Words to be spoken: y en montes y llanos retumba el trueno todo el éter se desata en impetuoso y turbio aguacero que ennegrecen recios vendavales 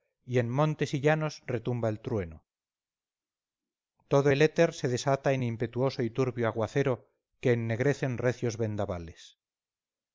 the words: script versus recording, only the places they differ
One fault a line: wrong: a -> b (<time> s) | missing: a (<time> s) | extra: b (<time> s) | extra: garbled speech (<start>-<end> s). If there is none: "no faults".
no faults